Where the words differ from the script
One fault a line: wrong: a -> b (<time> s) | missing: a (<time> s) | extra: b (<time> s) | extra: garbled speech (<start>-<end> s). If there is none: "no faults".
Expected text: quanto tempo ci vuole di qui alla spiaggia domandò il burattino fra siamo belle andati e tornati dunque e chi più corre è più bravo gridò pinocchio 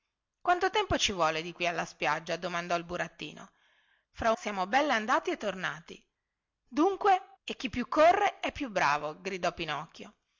no faults